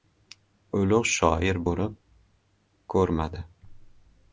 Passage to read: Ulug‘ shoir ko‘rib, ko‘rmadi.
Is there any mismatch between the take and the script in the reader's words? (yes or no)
no